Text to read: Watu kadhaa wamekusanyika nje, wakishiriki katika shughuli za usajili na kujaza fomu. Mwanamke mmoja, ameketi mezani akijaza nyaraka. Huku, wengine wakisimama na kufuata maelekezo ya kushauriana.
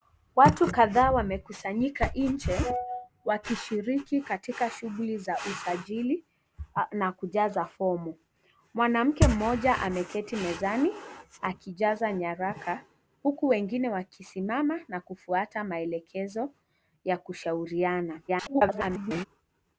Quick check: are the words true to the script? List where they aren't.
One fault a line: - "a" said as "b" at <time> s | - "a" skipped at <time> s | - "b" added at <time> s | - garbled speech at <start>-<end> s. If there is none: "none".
- garbled speech at 18.3-19.3 s